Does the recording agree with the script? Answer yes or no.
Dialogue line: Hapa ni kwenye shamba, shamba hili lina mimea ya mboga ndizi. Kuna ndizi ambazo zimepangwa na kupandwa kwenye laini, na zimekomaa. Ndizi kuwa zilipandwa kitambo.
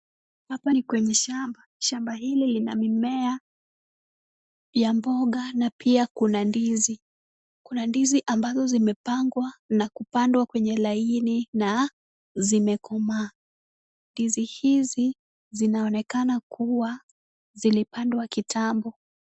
no